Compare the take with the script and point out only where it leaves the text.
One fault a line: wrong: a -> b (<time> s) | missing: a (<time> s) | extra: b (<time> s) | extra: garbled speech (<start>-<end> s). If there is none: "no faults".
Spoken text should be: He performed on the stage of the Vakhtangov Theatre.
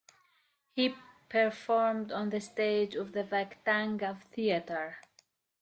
no faults